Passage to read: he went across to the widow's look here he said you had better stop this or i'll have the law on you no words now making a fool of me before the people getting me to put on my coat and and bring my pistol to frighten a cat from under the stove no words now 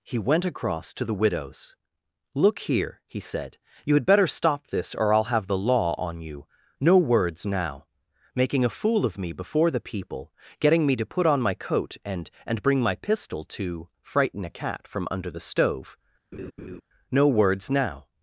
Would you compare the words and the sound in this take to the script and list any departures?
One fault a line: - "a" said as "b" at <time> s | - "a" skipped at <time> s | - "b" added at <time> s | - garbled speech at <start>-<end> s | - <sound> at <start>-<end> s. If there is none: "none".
- laugh at 16.3-16.8 s